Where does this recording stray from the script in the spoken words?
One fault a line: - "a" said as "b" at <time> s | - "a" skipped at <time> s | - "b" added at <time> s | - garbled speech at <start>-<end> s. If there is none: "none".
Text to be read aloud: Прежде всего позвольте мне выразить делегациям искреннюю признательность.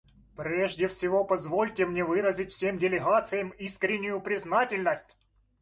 - "всем" added at 2.5 s